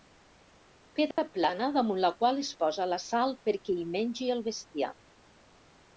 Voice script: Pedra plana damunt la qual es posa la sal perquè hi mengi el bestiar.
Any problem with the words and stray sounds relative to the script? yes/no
yes